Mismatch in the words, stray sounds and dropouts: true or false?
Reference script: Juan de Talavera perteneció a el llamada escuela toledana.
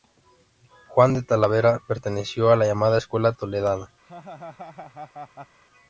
true